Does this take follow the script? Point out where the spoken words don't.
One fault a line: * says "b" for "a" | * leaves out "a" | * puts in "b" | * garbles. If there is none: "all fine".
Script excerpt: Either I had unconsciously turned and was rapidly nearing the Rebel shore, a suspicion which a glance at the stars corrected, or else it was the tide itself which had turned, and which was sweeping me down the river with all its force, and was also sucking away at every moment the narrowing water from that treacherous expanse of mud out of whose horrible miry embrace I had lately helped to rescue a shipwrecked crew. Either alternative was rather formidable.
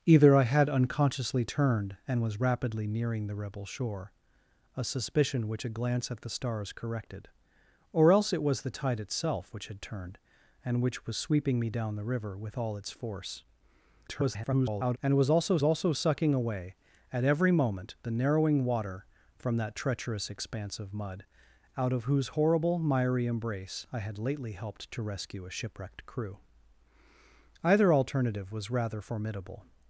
* garbles
* puts in "also"